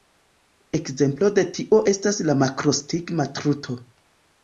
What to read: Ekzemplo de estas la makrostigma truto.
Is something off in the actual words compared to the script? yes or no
yes